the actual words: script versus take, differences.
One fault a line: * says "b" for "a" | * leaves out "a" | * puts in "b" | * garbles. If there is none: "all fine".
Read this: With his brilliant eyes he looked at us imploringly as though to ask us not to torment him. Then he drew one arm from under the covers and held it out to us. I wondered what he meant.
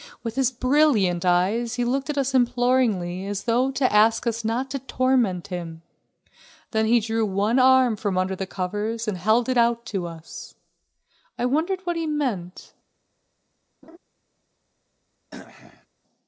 all fine